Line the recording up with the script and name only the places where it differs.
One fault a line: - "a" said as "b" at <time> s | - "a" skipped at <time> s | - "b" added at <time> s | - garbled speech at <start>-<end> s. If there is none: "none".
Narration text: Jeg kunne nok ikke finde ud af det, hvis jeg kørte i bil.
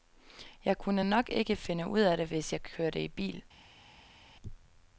none